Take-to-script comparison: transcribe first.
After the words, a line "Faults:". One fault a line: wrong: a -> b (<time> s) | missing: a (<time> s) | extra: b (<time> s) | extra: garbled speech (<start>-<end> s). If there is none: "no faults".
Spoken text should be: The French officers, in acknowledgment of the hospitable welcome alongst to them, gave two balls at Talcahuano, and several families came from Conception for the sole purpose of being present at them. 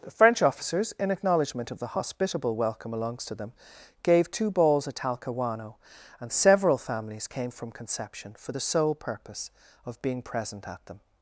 The French officers, in acknowledgment of the hospitable welcome alongst to them, gave two balls at Talcahuano, and several families came from Conception for the sole purpose of being present at them.
Faults:
no faults